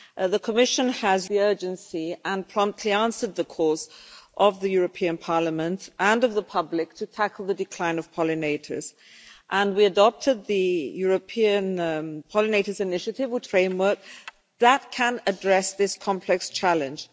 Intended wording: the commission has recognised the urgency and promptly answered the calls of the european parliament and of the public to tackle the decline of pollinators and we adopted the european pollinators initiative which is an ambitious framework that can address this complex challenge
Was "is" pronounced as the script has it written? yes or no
no